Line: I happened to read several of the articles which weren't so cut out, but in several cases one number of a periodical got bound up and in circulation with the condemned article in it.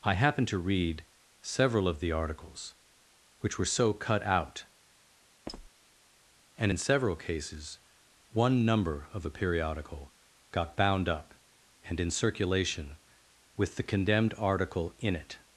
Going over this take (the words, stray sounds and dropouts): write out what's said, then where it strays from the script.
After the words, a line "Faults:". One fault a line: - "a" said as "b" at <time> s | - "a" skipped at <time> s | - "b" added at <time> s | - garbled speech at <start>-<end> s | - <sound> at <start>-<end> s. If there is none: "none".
I happened to read several of the articles which were so cut out, and in several cases one number of a periodical got bound up and in circulation with the condemned article in it.
Faults:
- "weren't" said as "were" at 3.6 s
- squeak at 5.5-5.7 s
- "but" said as "and" at 6.6 s